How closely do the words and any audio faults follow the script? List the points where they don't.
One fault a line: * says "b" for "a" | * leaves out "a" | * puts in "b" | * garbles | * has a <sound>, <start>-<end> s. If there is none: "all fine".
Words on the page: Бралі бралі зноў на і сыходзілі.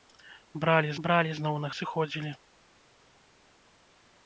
all fine